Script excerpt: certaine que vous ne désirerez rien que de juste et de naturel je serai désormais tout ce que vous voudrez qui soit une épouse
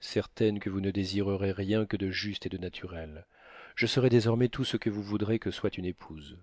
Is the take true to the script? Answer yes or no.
no